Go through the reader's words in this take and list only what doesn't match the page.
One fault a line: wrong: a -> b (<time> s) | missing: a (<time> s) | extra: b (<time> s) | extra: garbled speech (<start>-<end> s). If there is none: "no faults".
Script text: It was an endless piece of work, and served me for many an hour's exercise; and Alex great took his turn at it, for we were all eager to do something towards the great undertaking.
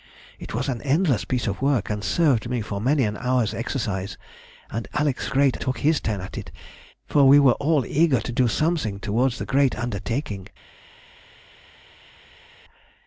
no faults